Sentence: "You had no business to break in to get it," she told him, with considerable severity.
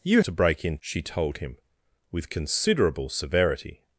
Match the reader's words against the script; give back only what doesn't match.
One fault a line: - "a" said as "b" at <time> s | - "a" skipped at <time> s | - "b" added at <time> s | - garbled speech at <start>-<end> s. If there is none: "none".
- "had no business" skipped at 0.2 s
- "to get it" skipped at 0.8 s